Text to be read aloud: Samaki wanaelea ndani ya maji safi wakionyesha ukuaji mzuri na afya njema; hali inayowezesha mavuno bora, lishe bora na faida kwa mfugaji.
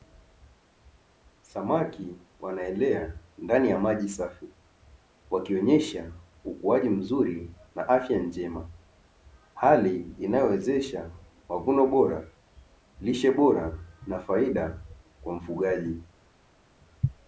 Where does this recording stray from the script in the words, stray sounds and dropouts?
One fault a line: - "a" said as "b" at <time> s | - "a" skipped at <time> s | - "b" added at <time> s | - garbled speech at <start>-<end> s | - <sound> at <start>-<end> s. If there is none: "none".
none